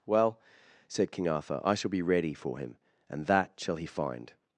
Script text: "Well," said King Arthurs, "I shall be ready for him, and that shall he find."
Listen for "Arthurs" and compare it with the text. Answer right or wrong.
wrong